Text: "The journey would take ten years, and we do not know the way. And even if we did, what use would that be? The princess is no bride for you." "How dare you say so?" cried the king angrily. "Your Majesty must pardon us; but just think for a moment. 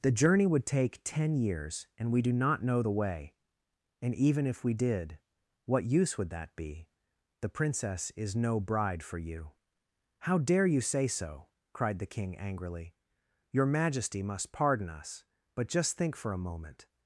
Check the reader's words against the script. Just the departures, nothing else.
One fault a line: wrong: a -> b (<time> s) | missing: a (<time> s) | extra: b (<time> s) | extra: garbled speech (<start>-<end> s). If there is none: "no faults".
no faults